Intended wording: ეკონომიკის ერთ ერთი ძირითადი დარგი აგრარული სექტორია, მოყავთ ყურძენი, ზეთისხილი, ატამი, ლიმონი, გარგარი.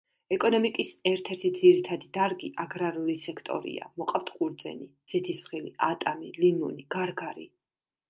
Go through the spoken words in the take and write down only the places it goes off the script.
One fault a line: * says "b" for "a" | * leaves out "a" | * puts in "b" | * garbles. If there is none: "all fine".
all fine